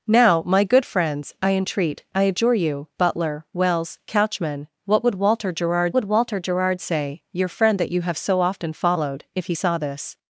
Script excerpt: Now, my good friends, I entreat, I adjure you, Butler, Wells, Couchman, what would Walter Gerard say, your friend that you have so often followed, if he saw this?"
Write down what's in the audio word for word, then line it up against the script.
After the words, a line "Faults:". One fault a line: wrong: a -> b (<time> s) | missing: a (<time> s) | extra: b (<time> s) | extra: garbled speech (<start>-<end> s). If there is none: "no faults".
Now, my good friends, I entreat, I adjure you, Butler, Wells, Couchman, what would Walter Gerard would Walter Gerard say, your friend that you have so often followed, if he saw this?"
Faults:
extra: would Walter Gerard (5.9 s)